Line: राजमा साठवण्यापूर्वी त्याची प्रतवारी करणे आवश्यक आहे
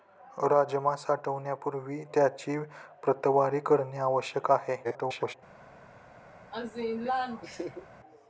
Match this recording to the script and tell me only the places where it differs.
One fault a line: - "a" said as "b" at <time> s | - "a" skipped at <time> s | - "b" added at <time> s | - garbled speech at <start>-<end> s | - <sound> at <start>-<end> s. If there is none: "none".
- garbled speech at 4.8-5.3 s
- laugh at 6.5-7.9 s